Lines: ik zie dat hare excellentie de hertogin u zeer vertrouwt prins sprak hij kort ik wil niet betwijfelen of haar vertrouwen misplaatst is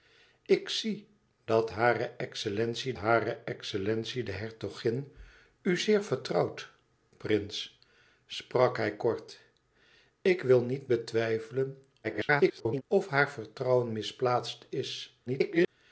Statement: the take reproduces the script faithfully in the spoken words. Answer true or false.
false